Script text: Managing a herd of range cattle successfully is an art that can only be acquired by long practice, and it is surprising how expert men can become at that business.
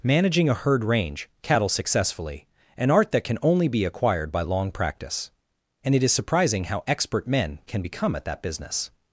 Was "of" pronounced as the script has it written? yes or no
no